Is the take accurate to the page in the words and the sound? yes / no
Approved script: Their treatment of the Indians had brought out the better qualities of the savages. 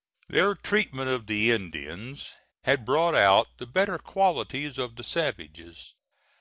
yes